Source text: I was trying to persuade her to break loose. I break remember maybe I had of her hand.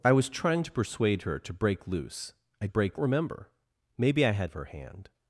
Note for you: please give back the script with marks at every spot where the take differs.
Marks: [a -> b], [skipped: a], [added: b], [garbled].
I was trying to persuade her to break loose. I break remember maybe I had of her hand.